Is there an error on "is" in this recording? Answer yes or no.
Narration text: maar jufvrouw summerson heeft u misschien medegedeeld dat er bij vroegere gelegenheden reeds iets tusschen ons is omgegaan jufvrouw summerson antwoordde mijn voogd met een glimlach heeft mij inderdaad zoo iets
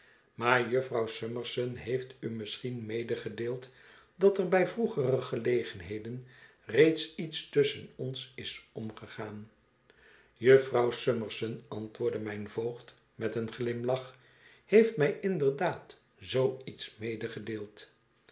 no